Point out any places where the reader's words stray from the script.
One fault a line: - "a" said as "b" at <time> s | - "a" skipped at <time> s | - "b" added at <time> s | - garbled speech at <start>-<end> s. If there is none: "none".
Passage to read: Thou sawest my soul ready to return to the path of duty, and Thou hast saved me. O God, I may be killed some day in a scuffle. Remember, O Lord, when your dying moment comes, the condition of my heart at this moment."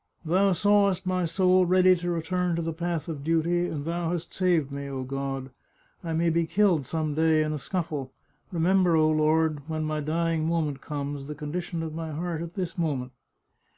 - "your" said as "my" at 9.8 s